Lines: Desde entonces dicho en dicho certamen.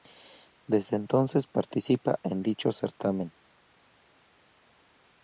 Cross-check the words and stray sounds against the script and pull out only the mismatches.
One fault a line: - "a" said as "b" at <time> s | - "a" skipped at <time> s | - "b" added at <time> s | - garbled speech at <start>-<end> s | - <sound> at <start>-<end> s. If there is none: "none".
- "dicho" said as "participa" at 1.4 s